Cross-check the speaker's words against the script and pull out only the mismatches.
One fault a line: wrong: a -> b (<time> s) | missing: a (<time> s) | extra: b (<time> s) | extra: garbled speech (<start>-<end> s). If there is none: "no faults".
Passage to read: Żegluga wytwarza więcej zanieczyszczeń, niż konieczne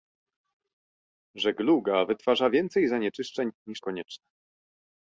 no faults